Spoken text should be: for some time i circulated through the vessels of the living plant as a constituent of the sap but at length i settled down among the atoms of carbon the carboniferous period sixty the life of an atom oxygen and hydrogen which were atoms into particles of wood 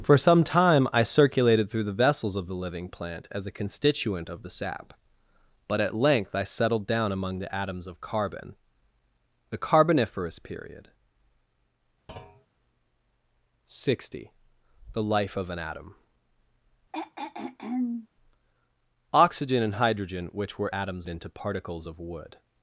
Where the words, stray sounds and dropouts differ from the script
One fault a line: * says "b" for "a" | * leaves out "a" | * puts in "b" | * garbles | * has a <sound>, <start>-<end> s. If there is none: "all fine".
* has a thud, 12.1-12.5 s
* has a throat clearing, 16.9-18.1 s